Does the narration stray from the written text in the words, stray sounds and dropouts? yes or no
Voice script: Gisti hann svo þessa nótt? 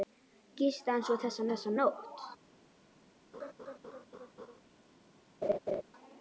yes